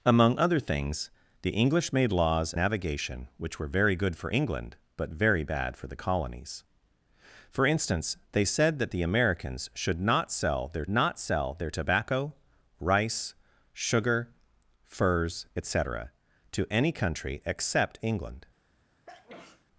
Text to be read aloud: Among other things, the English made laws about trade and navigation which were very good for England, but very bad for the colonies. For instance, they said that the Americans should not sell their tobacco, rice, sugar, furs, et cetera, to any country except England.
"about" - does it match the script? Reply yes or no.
no